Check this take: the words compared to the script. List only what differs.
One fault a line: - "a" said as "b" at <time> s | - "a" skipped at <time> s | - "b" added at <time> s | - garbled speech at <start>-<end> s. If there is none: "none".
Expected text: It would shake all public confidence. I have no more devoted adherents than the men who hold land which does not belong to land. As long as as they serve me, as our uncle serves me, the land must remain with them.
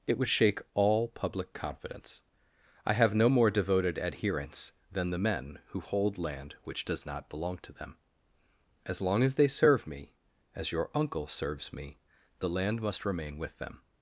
- "land" said as "them" at 7.7 s
- "as" skipped at 9.3 s
- "our" said as "your" at 10.7 s